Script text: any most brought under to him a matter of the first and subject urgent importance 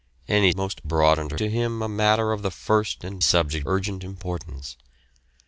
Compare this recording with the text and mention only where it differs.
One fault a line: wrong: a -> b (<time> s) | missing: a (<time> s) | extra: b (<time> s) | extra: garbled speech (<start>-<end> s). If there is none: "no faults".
no faults